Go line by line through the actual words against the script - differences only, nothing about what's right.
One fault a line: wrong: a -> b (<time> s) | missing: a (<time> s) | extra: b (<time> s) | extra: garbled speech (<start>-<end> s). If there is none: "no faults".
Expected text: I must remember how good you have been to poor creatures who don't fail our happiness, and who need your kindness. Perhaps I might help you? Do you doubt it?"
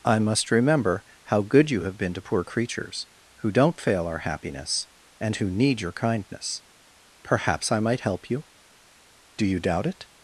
no faults